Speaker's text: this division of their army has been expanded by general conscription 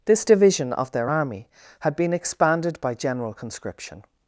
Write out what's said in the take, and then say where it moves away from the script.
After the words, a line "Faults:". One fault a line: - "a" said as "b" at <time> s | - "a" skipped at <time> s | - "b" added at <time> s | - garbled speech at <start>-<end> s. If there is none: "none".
this division of their army had been expanded by general conscription
Faults:
- "has" said as "had" at 1.8 s